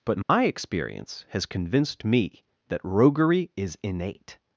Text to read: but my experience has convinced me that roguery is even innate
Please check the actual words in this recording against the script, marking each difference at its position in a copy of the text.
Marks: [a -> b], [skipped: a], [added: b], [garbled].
but my experience has convinced me that roguery is [skipped: even] innate